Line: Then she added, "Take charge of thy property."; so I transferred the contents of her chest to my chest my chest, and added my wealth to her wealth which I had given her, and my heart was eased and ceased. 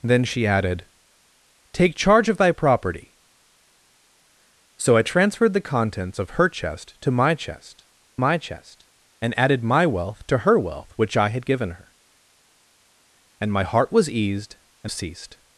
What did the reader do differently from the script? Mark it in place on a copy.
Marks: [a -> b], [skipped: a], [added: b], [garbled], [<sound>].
Then she added, "Take charge of thy property."; so I transferred the contents of her chest to my chest my chest, and added my wealth to her wealth which I had given her, and my heart was eased and ceased.